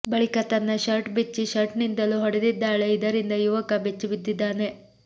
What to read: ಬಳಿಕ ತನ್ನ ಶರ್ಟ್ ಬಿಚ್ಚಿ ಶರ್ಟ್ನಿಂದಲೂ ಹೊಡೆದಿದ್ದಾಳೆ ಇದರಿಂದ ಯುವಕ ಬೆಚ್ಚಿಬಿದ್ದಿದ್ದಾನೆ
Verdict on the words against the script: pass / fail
pass